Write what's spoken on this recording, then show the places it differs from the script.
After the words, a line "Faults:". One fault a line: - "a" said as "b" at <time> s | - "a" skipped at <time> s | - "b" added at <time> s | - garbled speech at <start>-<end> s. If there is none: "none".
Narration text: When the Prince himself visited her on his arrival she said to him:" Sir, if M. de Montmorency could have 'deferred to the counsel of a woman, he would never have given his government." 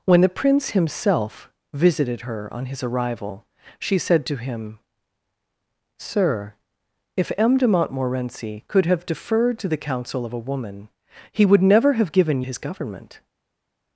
When the Prince himself visited her on his arrival she said to him:" Sir, if M. de Montmorency could have 'deferred to the counsel of a woman, he would never have given his government."
Faults:
none